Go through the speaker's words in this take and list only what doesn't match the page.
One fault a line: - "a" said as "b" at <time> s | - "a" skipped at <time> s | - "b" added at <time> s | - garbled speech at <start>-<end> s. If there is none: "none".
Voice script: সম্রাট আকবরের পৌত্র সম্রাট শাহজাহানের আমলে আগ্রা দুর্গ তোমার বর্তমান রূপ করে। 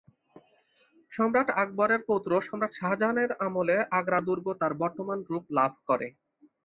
- "তোমার" said as "তার" at 4.6 s
- "লাভ" added at 5.6 s